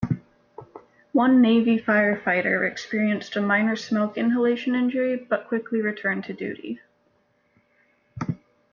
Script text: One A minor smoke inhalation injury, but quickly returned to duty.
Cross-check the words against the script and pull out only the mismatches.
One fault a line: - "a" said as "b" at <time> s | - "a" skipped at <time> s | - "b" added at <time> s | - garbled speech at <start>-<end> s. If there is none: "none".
- "Navy firefighter experienced" added at 1.4 s